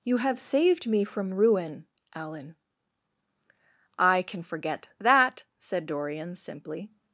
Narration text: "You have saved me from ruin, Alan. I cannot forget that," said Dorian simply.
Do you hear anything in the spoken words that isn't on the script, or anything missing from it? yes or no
yes